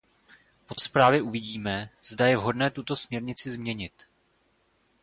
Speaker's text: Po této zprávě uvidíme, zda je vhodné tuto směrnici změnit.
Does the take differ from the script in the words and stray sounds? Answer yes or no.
yes